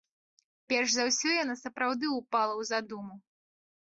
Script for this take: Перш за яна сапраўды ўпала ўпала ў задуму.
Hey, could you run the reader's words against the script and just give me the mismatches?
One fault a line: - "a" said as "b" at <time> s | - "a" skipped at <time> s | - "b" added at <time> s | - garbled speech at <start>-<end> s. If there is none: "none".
- "ўсё" added at 1.1 s
- "ўпала" skipped at 2.5 s